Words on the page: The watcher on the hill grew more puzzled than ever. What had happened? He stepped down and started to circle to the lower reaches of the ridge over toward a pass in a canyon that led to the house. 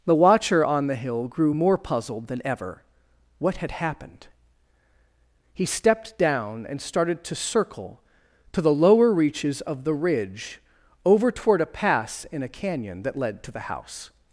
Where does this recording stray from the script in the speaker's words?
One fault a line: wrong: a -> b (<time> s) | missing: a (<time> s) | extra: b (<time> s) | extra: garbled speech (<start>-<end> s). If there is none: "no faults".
no faults